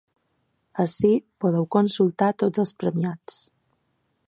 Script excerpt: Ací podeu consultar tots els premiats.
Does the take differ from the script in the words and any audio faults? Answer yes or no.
no